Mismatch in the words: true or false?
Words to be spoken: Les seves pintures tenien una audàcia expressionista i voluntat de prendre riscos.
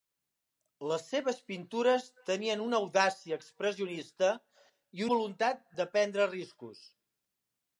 false